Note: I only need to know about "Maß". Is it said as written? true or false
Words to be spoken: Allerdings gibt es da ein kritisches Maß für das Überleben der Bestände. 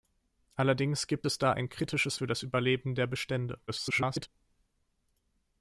false